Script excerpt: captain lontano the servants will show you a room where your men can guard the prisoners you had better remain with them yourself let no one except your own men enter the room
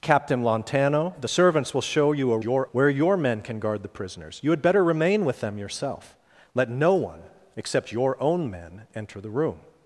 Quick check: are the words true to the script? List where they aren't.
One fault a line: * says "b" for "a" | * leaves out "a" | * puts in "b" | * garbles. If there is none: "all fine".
* says "your" for "room"